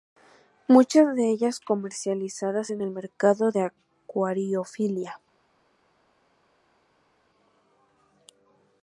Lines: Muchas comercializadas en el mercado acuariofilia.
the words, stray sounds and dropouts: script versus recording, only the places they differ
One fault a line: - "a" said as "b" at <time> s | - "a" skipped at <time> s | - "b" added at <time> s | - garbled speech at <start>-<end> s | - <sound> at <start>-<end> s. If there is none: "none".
- "de ellas" added at 1.1 s
- "de" added at 3.5 s